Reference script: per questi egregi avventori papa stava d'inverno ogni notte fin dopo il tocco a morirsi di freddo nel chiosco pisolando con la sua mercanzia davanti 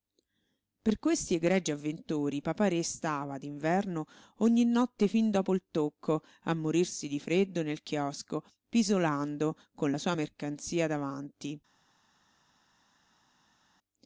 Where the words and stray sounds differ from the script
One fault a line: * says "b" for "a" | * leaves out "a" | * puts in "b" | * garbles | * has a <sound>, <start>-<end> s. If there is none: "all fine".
* puts in "re"